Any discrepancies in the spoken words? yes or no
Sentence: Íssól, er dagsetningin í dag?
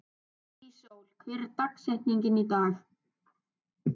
yes